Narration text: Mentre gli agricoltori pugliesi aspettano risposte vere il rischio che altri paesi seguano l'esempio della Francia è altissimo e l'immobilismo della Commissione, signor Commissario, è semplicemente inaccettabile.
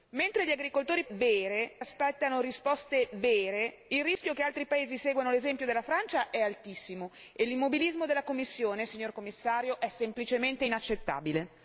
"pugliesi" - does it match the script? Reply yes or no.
no